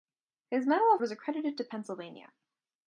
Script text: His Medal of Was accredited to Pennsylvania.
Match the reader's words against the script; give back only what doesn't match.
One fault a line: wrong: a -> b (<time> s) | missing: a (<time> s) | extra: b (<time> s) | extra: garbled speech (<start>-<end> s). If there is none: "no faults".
no faults